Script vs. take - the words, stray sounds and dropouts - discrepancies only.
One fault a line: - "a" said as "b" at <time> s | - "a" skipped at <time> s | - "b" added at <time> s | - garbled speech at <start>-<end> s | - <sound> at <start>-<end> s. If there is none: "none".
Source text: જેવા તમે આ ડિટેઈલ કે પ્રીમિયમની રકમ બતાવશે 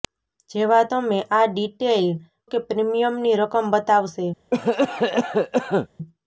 - cough at 4.5-5.9 s